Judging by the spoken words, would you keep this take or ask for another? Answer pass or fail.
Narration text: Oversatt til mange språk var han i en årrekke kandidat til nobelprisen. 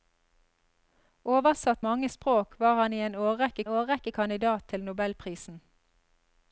fail